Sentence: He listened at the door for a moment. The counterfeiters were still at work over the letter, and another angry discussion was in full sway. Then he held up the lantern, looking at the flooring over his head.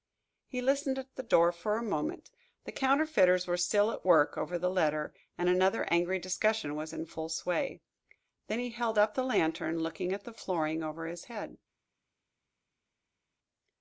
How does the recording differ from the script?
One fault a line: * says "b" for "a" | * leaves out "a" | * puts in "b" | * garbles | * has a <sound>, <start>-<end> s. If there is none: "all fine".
all fine